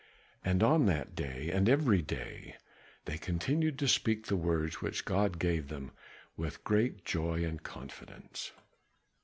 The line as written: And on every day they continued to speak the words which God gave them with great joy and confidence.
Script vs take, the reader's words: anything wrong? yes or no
yes